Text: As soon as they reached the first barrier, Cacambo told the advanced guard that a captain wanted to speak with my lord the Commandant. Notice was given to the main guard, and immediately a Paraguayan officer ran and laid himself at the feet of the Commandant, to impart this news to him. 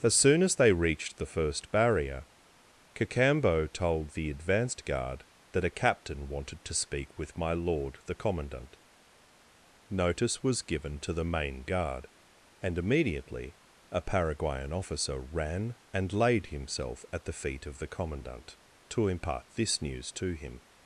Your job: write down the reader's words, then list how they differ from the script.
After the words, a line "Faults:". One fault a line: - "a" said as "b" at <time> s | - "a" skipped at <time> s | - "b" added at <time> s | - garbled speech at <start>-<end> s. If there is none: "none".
As soon as they reached the first barrier, Cacambo told the advanced guard that a captain wanted to speak with my lord the Commandant. Notice was given to the main guard, and immediately a Paraguayan officer ran and laid himself at the feet of the Commandant, to impart this news to him.
Faults:
none